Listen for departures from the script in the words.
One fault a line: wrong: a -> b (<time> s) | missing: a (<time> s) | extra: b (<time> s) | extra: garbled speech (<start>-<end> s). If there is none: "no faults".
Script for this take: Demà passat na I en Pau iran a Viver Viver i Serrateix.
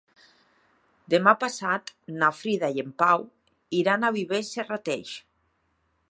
extra: Frida (2.4 s)
missing: Viver (4.4 s)